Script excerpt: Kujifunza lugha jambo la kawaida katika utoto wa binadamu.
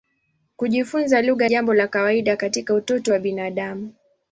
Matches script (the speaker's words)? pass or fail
pass